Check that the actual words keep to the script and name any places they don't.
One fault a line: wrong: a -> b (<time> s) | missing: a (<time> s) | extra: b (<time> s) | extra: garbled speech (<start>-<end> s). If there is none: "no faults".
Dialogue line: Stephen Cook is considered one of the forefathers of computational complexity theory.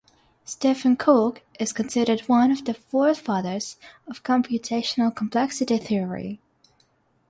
no faults